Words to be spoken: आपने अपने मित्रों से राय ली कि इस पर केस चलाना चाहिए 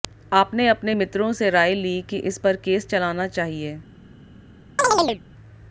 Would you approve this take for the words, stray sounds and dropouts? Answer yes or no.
no